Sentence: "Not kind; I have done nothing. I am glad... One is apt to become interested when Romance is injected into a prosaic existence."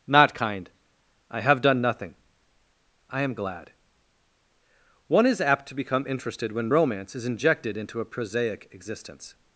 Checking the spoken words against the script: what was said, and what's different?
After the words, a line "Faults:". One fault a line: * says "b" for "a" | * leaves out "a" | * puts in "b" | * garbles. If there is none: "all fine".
"Not kind; I have done nothing. I am glad... One is apt to become interested when Romance is injected into a prosaic existence."
Faults:
all fine